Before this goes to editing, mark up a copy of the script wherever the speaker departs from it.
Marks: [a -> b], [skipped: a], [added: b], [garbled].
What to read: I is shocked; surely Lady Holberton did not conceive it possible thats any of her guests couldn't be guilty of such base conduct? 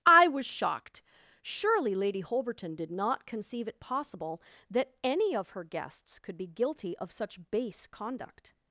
I [is -> was] shocked; surely Lady Holberton did not conceive it possible [thats -> that] any of her guests [couldn't -> could] be guilty of such base conduct?